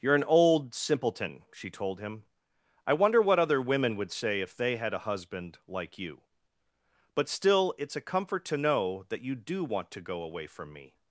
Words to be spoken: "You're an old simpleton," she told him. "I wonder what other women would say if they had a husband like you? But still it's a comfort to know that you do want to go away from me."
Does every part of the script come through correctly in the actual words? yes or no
yes